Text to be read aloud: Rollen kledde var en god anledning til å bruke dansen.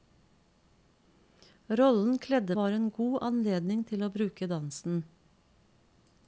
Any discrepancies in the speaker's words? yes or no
no